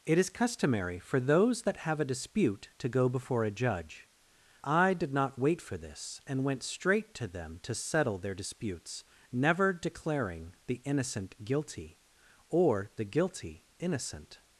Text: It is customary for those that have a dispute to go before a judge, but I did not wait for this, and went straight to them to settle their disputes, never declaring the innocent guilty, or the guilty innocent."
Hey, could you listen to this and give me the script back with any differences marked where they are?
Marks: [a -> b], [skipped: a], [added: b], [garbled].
It is customary for those that have a dispute to go before a judge, [skipped: but] I did not wait for this, and went straight to them to settle their disputes, never declaring the innocent guilty, or the guilty innocent."